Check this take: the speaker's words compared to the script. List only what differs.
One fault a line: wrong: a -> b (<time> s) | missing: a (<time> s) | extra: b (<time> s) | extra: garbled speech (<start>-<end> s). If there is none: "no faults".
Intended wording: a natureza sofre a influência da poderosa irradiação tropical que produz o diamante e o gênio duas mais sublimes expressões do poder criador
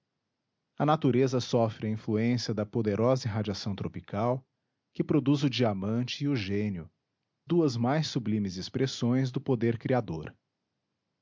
no faults